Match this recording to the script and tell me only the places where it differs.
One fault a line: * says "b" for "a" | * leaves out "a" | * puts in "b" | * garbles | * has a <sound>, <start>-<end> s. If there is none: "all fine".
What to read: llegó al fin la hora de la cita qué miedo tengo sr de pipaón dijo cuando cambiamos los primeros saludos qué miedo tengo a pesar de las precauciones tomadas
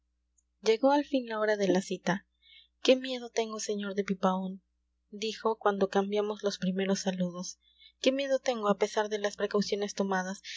all fine